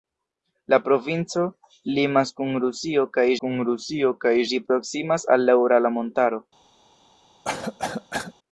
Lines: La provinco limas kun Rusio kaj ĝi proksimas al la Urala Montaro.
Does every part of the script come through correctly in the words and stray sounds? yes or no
no